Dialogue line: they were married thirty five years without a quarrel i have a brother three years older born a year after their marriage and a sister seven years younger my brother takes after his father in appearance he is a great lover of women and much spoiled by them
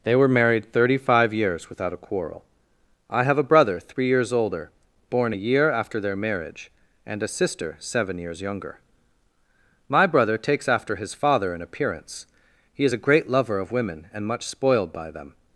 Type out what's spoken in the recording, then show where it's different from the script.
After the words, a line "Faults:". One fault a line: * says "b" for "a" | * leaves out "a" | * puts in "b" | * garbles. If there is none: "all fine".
they were married thirty five years without a quarrel i have a brother three years older born a year after their marriage and a sister seven years younger my brother takes after his father in appearance he is a great lover of women and much spoiled by them
Faults:
all fine